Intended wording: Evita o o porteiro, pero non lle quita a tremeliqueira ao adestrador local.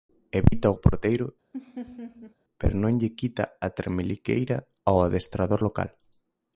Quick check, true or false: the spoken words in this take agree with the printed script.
true